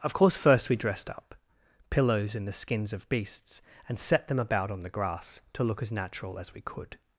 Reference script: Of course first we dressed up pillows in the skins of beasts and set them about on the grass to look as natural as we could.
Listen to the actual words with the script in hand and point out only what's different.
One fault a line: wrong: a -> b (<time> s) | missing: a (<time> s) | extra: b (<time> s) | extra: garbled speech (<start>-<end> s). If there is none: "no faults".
no faults